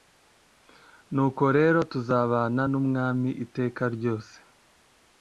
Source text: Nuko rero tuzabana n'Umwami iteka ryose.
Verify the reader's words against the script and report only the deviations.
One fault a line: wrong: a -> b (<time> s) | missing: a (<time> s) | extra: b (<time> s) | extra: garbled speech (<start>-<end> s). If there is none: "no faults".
no faults